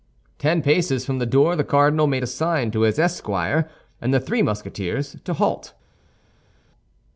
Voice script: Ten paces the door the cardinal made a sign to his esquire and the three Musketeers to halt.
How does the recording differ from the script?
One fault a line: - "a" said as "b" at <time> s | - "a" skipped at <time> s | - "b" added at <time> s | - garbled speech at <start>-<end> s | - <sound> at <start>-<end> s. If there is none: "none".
- "from" added at 1.1 s